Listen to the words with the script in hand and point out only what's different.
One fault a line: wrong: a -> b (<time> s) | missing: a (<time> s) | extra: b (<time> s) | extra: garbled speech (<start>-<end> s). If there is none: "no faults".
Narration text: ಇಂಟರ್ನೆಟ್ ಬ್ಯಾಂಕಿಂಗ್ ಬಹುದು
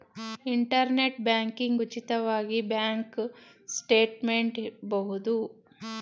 extra: ಉಚಿತವಾಗಿ ಬ್ಯಾಂಕ್ ಸ್ಟೇಟ್ಮೆಂಟ್ (1.8 s)